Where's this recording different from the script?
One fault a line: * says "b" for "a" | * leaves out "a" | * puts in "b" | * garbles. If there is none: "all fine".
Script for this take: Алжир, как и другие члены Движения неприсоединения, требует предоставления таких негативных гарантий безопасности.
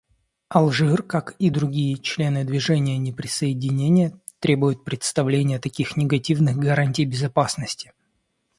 all fine